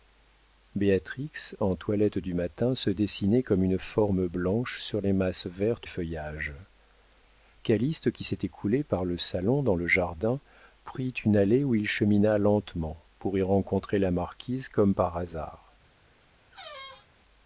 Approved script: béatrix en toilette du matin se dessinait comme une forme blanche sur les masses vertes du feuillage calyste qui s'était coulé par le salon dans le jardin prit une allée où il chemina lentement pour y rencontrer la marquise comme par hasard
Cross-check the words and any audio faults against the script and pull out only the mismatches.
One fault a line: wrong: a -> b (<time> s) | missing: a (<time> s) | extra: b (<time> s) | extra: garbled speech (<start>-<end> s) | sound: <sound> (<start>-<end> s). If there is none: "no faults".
missing: du (5.9 s)
sound: squeak (16.5-17.1 s)